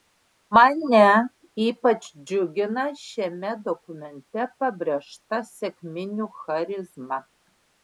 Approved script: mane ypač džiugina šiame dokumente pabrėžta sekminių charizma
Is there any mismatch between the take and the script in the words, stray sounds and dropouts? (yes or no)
no